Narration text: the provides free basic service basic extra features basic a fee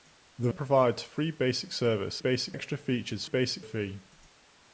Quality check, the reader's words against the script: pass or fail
pass